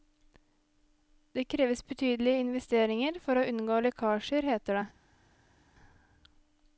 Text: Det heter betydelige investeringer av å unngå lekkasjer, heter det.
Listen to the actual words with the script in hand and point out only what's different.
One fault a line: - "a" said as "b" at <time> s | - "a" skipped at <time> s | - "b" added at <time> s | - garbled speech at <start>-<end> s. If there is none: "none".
- "heter" said as "kreves" at 1.4 s
- "av" said as "for" at 3.2 s